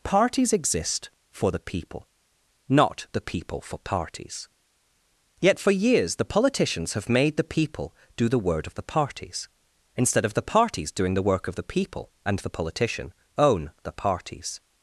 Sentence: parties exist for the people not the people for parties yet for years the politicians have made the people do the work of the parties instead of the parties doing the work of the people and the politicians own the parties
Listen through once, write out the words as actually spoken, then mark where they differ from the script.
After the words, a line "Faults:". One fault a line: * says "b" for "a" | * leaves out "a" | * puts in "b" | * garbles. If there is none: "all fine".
parties exist for the people not the people for parties yet for years the politicians have made the people do the word of the parties instead of the parties doing the work of the people and the politician own the parties
Faults:
* says "word" for "work"
* says "politician" for "politicians"